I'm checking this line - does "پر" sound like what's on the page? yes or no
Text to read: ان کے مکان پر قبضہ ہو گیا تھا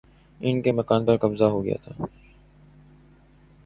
yes